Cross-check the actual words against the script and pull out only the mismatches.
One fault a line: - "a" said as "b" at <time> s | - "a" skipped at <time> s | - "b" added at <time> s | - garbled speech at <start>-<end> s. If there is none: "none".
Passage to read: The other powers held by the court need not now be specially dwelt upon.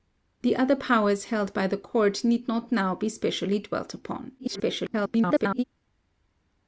- garbled speech at 4.4-5.6 s